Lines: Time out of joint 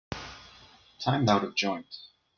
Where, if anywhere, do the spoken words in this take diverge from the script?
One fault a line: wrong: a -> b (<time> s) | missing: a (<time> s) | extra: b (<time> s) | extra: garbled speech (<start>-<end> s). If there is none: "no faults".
no faults